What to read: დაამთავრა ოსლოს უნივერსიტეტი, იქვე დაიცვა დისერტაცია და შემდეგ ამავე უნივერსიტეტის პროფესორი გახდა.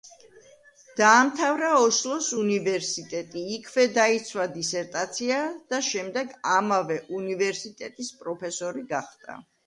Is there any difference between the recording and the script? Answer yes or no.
no